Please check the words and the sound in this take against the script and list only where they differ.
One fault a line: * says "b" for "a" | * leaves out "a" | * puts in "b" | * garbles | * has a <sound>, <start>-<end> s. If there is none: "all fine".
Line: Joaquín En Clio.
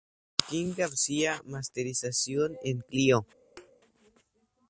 * puts in "García Masterización"
* has a thud, 3.6-3.7 s